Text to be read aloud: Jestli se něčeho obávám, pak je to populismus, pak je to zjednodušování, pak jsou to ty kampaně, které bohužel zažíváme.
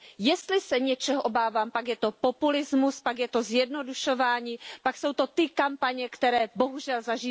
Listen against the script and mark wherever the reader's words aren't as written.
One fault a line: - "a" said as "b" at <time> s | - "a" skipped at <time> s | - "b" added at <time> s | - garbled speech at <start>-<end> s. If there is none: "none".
none